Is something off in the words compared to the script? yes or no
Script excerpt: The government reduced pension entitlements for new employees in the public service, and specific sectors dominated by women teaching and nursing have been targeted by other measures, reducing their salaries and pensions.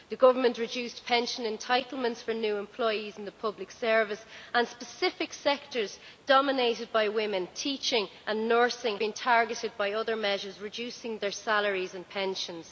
yes